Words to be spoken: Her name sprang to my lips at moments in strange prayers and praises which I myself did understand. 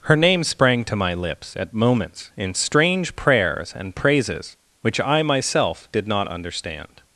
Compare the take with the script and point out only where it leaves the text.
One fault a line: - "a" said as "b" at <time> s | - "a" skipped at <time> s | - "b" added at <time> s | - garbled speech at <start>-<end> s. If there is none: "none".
- "not" added at 6.1 s